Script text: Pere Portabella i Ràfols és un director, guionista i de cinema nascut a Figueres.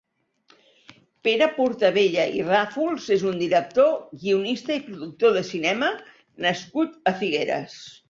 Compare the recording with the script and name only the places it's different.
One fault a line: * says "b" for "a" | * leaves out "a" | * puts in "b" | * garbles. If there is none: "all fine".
* puts in "productor"